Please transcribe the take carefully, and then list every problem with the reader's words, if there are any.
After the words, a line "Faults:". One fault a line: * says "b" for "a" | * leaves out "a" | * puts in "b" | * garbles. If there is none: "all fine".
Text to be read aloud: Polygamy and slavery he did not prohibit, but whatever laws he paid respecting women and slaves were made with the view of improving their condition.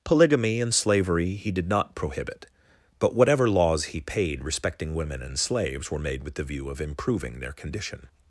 Polygamy and slavery he did not prohibit, but whatever laws he paid respecting women and slaves were made with the view of improving their condition.
Faults:
all fine